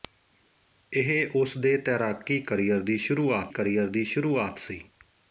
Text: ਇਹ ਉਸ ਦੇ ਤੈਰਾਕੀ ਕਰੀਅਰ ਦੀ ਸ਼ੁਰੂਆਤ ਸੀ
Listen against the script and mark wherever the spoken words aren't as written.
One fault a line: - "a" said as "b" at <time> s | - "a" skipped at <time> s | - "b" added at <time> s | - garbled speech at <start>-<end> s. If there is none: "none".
- "ਕਰੀਅਰ ਦੀ ਸ਼ੁਰੂਆਤ" added at 3.5 s